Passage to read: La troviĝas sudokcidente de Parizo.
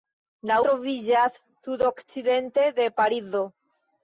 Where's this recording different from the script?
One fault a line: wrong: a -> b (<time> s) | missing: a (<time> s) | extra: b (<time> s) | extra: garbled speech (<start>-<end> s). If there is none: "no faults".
no faults